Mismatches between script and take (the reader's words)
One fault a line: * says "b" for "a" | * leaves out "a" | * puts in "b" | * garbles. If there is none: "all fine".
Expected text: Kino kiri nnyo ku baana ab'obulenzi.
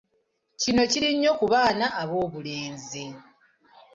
all fine